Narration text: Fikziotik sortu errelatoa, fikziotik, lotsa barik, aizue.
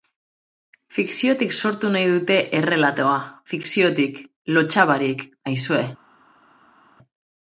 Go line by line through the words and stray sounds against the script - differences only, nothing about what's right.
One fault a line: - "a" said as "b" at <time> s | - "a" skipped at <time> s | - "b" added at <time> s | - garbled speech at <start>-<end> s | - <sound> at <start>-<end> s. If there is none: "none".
- "nahi dute" added at 2.0 s